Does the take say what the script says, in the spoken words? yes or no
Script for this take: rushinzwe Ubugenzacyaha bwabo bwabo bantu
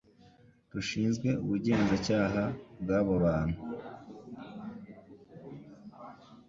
no